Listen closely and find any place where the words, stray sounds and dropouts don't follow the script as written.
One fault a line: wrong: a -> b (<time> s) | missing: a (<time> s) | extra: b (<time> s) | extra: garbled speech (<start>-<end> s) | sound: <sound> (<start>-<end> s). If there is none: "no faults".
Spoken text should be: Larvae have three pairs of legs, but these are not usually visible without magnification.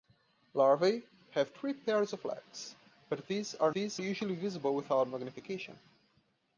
wrong: not -> these (3.7 s)